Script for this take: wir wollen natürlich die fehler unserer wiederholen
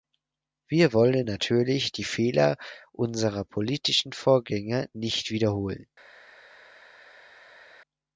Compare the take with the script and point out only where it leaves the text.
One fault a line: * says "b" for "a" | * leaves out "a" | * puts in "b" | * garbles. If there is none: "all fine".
* puts in "politischen vorgänger nicht"